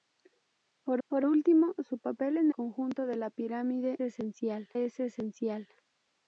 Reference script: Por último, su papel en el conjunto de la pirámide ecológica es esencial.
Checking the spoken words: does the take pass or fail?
fail